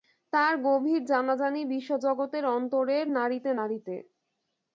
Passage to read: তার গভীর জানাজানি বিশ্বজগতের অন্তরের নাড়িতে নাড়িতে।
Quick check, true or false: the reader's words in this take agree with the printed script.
true